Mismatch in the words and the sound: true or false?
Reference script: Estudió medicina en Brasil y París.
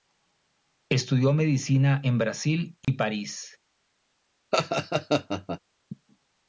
true